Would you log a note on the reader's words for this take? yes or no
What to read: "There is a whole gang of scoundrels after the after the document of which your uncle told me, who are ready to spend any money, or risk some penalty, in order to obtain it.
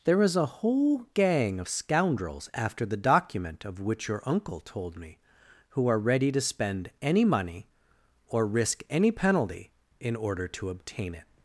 yes